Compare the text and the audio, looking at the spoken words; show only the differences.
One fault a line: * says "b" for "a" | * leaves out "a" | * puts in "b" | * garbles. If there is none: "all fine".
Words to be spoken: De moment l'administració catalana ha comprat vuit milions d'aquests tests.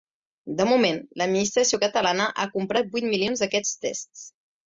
all fine